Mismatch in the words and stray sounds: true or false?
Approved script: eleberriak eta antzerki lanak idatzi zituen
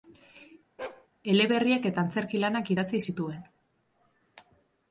true